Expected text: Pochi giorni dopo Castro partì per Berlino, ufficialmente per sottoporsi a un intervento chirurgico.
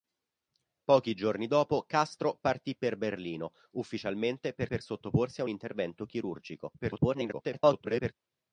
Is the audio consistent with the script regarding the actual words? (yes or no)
no